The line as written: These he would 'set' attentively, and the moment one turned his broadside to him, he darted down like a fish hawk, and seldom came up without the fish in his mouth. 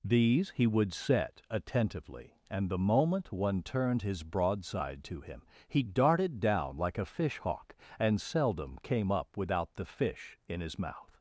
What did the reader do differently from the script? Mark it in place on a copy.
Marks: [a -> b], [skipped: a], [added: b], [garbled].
These he would 'set' attentively, and the moment one turned his broadside to him, he darted down like a fish hawk, and seldom came up without the fish in his mouth.